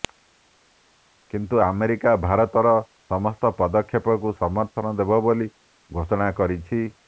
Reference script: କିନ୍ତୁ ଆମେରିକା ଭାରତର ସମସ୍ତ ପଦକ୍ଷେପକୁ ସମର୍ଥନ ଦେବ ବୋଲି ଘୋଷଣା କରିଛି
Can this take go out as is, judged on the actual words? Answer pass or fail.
pass